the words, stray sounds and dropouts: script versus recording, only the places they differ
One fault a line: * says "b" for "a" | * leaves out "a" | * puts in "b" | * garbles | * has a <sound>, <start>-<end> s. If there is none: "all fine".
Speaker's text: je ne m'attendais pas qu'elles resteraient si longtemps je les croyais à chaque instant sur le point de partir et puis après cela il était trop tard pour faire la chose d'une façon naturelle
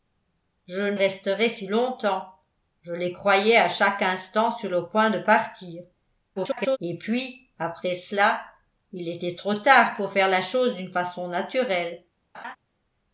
* leaves out "m'attendais pas qu'elles"
* garbles
* has a laugh, 12.3-12.6 s